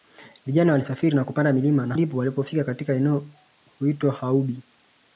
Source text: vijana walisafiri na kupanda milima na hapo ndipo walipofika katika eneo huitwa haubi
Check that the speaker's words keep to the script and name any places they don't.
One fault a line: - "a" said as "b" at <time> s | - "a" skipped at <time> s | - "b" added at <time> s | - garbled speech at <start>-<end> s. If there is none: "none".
- "hapo" skipped at 2.0 s